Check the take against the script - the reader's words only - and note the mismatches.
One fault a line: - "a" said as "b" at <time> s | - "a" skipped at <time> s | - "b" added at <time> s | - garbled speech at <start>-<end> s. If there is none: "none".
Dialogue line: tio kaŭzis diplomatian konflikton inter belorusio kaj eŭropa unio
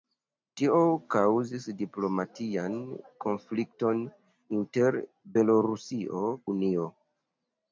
- "kaj eŭropa" skipped at 6.2 s